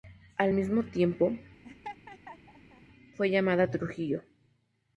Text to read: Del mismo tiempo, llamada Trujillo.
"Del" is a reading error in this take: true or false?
true